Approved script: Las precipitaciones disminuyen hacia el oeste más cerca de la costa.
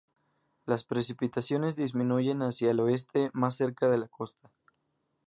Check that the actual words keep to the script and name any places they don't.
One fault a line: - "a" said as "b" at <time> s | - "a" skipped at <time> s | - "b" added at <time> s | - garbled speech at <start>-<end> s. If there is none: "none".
none